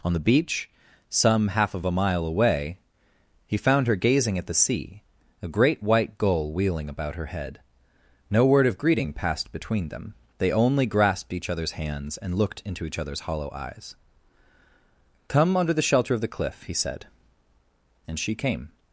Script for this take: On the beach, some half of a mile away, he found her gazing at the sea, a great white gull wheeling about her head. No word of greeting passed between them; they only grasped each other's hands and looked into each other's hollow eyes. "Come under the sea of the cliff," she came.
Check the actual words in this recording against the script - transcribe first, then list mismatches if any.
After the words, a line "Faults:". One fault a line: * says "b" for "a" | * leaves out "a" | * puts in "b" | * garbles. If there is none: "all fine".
On the beach, some half of a mile away, he found her gazing at the sea, a great white gull wheeling about her head. No word of greeting passed between them; they only grasped each other's hands and looked into each other's hollow eyes. "Come under the shelter of the cliff," he said, and she came.
Faults:
* says "shelter" for "sea"
* puts in "he said and"